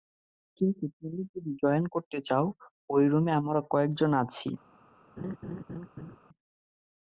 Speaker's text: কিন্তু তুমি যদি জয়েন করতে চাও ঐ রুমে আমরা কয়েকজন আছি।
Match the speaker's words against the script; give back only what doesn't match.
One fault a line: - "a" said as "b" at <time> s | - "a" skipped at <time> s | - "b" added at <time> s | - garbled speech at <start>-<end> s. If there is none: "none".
none